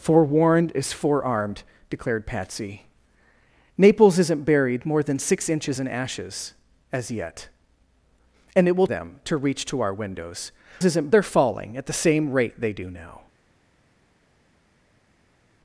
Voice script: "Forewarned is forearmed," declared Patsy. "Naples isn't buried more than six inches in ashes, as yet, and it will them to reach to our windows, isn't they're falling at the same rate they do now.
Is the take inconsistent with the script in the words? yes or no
no